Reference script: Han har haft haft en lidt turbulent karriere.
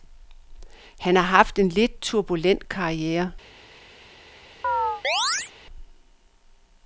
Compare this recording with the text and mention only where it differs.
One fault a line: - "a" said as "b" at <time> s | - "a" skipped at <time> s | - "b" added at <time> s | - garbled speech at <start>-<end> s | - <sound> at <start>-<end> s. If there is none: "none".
- "haft" skipped at 1.6 s
- chirp at 4.6-5.5 s